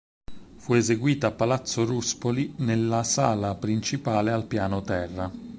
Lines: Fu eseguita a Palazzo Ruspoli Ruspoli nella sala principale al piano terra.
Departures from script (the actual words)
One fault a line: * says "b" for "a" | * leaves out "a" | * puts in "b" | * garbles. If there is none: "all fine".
* leaves out "Ruspoli"